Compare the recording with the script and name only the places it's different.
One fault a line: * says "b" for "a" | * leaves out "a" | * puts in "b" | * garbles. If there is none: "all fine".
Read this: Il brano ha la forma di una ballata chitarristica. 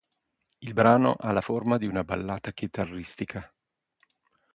all fine